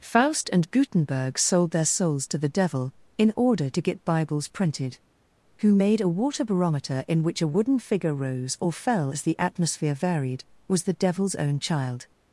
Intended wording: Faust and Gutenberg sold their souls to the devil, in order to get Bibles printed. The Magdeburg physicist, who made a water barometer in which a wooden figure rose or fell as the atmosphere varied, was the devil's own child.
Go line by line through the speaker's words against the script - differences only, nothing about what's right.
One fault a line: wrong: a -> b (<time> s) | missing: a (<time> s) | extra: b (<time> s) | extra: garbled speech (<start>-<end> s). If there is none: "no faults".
missing: The Magdeburg physicist (5.0 s)